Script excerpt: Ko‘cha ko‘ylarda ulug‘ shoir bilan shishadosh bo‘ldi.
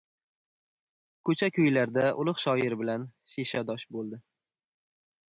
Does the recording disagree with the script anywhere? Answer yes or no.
no